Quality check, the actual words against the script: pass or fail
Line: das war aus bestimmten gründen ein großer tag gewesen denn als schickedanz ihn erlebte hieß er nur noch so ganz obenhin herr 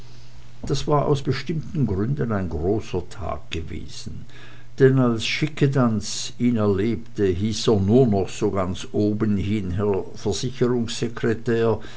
pass